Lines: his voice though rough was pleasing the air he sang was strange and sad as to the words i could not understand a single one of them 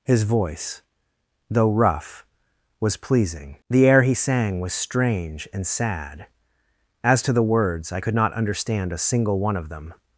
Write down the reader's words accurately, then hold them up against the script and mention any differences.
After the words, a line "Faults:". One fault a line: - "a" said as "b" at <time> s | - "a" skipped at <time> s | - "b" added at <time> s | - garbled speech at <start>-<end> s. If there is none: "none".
his voice though rough was pleasing the air he sang was strange and sad as to the words i could not understand a single one of them
Faults:
none